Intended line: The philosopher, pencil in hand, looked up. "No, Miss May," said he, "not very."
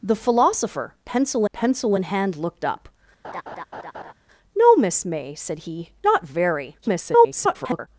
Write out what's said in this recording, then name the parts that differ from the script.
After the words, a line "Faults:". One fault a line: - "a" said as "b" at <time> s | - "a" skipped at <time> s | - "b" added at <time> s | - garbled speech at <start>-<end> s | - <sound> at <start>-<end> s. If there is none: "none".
The philosopher, pencil pencil in hand, looked up. "No, Miss May," said he, "not very." [garbled]
Faults:
- "pencil" added at 1.5 s
- laugh at 3.2-4.1 s
- garbled speech at 6.8-7.9 s